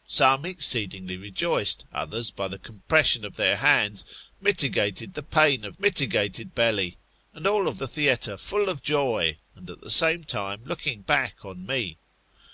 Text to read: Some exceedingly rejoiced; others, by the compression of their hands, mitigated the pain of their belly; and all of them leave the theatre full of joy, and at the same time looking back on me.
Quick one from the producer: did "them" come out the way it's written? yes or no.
no